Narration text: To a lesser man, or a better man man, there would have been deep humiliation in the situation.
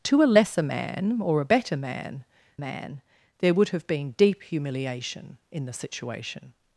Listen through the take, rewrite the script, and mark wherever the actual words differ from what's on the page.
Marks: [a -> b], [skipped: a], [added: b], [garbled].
To a lesser man, or a better man man, there would have been deep humiliation in the situation.